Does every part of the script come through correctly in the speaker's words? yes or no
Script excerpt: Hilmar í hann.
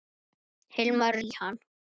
yes